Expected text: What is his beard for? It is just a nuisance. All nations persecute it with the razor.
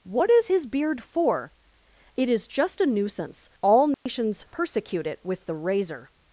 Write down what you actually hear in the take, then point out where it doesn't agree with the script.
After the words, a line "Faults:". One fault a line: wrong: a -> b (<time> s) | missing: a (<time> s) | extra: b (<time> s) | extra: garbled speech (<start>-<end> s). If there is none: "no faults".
What is his beard for? It is just a nuisance. All nations persecute it with the razor.
Faults:
no faults